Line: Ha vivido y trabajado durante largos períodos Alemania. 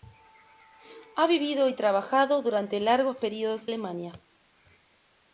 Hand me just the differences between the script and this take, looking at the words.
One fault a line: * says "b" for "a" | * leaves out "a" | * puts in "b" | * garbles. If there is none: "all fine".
all fine